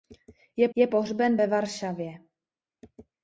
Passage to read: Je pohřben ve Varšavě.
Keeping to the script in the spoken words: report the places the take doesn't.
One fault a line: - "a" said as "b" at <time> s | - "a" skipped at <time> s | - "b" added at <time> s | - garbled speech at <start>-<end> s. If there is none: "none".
- "je" added at 0.7 s